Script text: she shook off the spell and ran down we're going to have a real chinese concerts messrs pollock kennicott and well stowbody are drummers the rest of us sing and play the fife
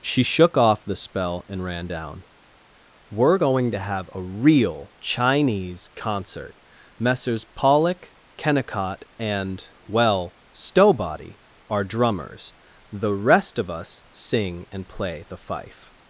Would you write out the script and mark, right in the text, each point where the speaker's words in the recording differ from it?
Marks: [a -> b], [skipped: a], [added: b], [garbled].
she shook off the spell and ran down we're going to have a real chinese [concerts -> concert] messrs pollock kennicott and well stowbody are drummers the rest of us sing and play the fife